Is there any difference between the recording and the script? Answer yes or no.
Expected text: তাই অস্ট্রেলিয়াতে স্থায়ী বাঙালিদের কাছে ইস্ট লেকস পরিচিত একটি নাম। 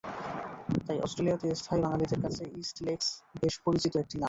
yes